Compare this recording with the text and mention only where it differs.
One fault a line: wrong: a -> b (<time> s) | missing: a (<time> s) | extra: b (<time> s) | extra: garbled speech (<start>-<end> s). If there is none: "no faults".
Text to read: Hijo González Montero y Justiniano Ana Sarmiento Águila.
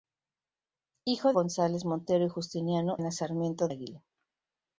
no faults